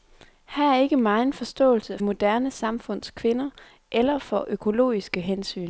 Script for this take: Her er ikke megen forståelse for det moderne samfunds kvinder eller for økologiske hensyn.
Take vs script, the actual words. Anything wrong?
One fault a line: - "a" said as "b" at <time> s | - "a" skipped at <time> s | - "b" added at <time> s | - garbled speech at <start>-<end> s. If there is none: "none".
- "for det" skipped at 2.0 s